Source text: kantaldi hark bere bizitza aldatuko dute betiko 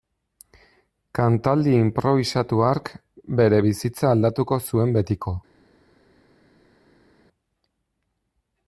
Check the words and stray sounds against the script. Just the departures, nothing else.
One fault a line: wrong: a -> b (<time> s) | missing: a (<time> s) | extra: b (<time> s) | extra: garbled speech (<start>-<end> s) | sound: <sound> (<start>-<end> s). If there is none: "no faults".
extra: inprobisatu (1.8 s)
wrong: dute -> zuen (4.7 s)